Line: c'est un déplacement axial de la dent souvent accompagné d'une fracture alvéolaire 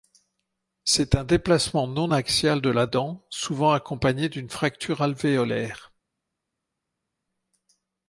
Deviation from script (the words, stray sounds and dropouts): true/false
true